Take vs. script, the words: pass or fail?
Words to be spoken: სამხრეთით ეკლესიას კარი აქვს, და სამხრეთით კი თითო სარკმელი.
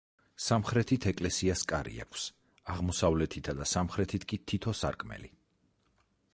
fail